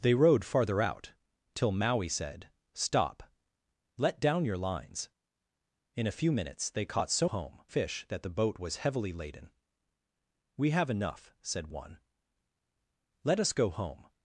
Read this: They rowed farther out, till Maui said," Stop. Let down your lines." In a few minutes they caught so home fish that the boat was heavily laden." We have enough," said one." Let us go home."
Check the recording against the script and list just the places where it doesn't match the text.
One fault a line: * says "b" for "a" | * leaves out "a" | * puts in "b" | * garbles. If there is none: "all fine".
all fine